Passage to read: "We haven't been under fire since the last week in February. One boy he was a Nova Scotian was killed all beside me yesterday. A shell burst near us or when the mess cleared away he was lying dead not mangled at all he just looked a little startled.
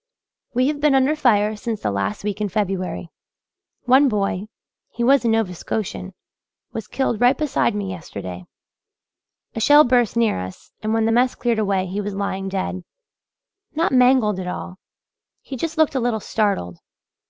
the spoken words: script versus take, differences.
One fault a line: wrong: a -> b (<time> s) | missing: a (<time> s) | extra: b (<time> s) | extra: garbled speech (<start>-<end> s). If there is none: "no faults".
wrong: haven't -> have (0.7 s)
wrong: all -> right (7.2 s)
wrong: or -> and (10.8 s)